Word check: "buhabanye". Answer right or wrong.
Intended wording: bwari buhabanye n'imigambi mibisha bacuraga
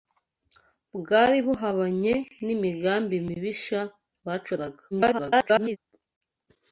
right